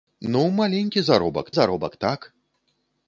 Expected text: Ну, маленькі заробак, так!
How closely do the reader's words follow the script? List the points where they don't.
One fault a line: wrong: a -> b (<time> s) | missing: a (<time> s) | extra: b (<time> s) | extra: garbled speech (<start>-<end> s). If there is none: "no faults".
extra: заробак (1.5 s)